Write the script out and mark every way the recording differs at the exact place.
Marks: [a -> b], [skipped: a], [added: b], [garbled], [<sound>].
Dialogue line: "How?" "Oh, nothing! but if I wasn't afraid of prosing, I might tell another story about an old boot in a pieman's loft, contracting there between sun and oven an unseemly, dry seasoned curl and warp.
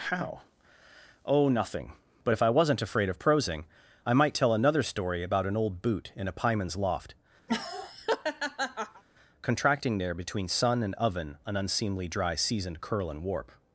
"How?" "Oh, nothing! but if I wasn't afraid of prosing, I might tell another story about an old boot in a pieman's loft, [laugh] contracting there between sun and oven an unseemly, dry seasoned curl and warp.